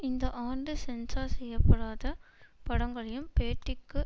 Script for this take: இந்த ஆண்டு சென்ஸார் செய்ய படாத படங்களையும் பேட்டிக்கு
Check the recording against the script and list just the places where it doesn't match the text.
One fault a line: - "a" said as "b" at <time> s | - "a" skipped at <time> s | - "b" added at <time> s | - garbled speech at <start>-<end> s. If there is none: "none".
none